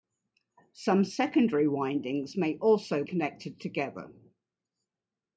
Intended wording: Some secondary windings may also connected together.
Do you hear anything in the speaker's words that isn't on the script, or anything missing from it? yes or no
no